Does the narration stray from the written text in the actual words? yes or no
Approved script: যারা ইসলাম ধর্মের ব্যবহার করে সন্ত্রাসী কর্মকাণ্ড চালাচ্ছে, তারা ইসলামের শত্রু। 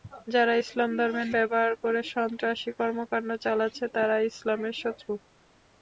no